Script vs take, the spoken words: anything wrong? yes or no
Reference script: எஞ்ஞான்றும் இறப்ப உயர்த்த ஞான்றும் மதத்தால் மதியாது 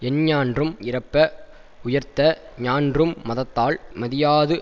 no